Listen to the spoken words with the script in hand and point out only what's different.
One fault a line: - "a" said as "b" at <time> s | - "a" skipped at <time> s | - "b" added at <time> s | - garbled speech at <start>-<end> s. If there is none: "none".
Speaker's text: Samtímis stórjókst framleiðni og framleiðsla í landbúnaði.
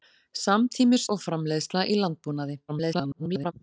- "stórjókst framleiðni" skipped at 1.0 s
- garbled speech at 2.7-3.5 s